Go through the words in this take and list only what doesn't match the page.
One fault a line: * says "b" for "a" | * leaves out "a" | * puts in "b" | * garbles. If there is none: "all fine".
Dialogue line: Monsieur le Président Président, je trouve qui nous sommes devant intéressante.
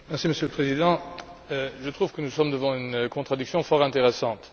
* leaves out "Président"
* says "que" for "qui"
* puts in "une contradiction fort"